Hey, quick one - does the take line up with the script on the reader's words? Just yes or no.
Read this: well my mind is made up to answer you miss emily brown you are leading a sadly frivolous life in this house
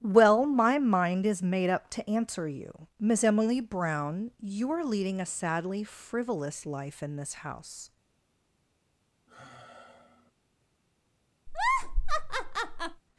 yes